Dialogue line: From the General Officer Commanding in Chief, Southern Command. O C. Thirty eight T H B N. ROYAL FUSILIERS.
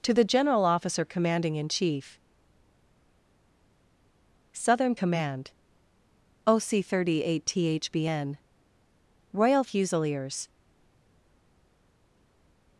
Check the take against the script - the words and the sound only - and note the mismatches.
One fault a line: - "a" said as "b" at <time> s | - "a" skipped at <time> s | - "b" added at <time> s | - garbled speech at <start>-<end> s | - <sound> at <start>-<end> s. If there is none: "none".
- "From" said as "To" at 0.0 s